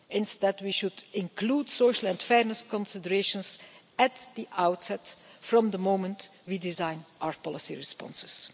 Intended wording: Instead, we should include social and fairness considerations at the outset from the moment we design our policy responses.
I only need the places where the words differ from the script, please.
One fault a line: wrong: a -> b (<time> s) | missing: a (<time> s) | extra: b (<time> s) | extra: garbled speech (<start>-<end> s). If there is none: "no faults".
no faults